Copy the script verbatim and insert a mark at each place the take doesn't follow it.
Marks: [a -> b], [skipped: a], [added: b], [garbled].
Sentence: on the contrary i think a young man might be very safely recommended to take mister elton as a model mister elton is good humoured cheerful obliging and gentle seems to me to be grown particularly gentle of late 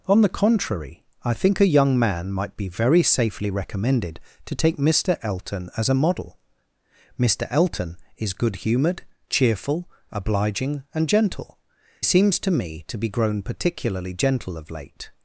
on the contrary i think a young man might be very safely recommended to take mister elton as a model mister elton is good humoured cheerful obliging and gentle seems to me to be grown particularly gentle of late